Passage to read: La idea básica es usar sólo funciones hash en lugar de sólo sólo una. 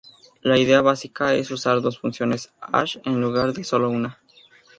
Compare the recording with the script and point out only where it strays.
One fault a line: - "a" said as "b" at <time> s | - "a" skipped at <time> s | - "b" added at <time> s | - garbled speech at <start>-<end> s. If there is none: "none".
- "sólo" said as "dos" at 1.8 s
- "sólo" skipped at 3.9 s